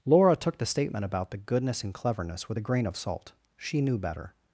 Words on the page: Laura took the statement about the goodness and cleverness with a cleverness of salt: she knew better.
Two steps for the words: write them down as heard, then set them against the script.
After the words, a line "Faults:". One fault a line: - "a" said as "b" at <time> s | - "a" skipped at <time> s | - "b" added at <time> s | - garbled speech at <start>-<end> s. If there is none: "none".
Laura took the statement about the goodness and cleverness with a grain of salt: she knew better.
Faults:
- "cleverness" said as "grain" at 2.6 s